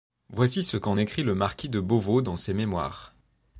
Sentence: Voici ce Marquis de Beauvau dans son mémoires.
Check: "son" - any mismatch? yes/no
yes